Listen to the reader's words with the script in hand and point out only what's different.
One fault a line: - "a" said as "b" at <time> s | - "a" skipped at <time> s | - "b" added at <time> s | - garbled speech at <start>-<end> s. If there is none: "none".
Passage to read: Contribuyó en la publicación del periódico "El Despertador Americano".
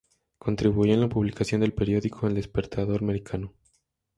none